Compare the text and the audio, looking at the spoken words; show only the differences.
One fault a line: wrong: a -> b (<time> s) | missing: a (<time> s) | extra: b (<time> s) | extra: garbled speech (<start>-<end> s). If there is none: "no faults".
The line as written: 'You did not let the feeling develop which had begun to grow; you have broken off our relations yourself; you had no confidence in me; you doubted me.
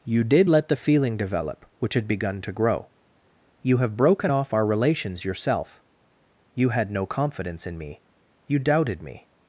missing: not (0.5 s)